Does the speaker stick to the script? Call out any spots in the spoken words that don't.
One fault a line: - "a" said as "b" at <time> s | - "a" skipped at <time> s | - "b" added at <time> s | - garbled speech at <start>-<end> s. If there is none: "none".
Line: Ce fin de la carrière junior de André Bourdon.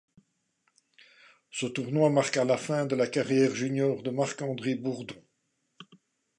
- "tournoi marqua la" added at 1.7 s
- "Marc" added at 4.1 s